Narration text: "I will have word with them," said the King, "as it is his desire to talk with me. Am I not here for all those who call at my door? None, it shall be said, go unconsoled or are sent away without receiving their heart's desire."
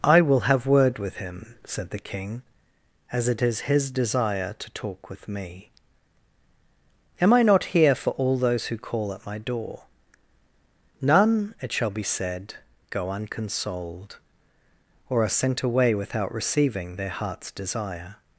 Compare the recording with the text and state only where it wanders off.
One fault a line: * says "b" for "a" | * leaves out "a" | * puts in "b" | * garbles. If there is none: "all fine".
* says "him" for "them"